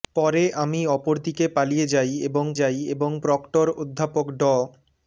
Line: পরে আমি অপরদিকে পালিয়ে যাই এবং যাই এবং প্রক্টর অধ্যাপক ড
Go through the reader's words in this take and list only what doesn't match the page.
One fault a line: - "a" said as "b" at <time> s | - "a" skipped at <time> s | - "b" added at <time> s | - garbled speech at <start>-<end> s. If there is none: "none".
none